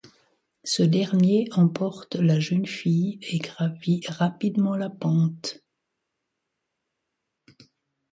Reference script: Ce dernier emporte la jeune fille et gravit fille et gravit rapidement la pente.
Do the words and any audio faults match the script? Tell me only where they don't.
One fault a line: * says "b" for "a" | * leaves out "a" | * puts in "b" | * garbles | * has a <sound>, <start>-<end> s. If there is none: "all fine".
* leaves out "fille et gravit"